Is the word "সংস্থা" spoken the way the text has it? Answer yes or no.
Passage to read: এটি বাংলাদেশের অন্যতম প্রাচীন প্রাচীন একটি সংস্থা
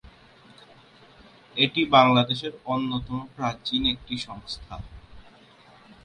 yes